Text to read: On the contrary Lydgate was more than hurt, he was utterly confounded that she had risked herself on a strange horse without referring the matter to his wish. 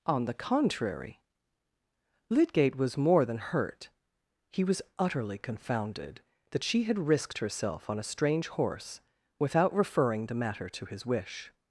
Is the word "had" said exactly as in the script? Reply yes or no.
yes